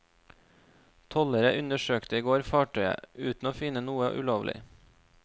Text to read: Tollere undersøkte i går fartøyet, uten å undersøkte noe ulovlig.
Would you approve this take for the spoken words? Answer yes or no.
no